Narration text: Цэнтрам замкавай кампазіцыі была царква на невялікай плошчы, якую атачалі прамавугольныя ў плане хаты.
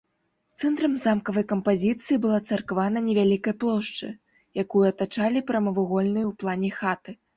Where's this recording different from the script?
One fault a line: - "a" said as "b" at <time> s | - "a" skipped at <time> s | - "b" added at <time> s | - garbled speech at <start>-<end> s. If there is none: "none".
none